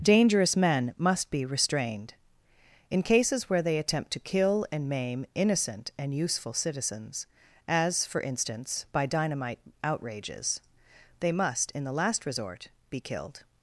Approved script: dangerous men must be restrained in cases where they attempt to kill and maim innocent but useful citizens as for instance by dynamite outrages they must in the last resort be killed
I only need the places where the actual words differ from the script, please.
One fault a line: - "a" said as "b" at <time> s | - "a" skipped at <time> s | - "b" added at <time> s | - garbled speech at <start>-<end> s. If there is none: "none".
- "but" said as "and" at 6.0 s